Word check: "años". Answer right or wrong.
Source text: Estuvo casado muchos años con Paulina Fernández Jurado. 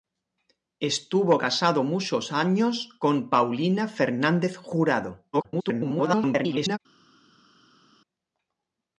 right